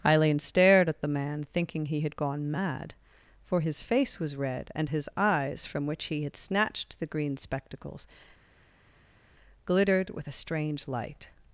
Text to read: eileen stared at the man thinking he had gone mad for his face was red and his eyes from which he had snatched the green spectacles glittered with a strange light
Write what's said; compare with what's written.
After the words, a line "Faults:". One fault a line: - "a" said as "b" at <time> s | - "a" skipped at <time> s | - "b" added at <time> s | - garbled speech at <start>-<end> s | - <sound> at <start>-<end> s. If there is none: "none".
eileen stared at the man thinking he had gone mad for his face was red and his eyes from which he had snatched the green spectacles glittered with a strange light
Faults:
none